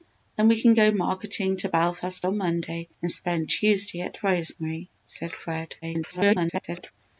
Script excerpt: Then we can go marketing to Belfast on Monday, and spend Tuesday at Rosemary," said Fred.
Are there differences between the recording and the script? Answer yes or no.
yes